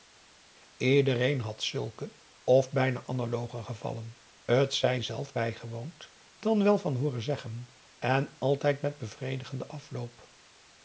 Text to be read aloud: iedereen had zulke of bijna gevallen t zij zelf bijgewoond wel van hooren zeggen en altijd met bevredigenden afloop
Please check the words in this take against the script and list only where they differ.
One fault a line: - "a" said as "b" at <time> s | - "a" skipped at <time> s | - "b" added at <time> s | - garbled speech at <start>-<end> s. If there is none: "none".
- "analoge" added at 3.0 s
- "dan" added at 6.4 s